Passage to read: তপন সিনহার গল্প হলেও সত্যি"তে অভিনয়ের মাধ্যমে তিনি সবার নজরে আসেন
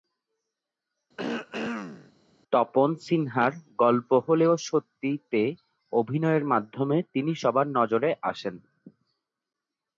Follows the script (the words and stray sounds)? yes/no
no